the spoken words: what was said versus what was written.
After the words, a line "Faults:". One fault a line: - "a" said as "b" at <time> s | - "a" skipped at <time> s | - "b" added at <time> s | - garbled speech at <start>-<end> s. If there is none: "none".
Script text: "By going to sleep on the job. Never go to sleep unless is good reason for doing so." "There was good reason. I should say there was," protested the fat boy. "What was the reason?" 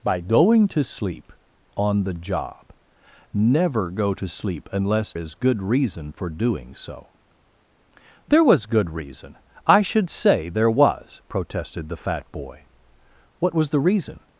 "By going to sleep on the job. Never go to sleep unless is good reason for doing so." "There was good reason. I should say there was," protested the fat boy. "What was the reason?"
Faults:
none